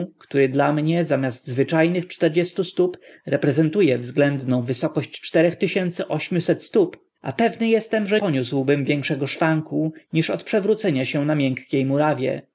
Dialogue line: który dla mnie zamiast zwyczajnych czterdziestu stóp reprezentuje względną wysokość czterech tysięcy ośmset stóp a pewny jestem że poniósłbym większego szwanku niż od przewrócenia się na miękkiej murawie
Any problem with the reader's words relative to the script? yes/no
no